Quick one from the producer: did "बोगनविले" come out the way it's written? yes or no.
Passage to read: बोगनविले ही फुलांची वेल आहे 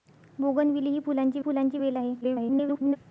yes